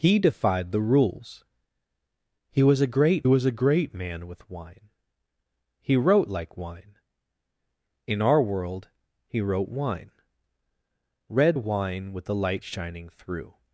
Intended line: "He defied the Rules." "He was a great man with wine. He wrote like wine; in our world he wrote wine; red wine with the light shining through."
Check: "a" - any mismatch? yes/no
no